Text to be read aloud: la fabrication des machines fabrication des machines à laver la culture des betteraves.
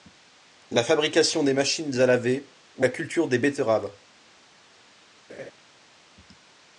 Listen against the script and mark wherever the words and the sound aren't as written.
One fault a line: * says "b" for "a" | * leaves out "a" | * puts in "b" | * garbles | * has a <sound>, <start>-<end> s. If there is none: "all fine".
* leaves out "fabrication des machines"
* puts in "ou"
* has a laugh, 5.3-5.5 s